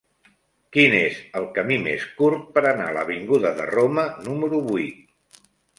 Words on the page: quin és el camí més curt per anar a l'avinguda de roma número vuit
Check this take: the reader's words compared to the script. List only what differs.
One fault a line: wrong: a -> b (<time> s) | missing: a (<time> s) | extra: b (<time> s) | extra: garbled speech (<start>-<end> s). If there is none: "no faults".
no faults